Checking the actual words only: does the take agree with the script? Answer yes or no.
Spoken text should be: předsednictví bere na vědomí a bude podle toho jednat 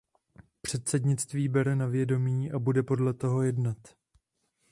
yes